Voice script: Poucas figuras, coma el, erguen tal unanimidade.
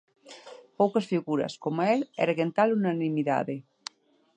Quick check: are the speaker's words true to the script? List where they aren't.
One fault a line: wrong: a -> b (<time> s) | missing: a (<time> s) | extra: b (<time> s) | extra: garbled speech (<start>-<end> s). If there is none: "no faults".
no faults